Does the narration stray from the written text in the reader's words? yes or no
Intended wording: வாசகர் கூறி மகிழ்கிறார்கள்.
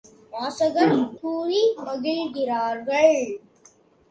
no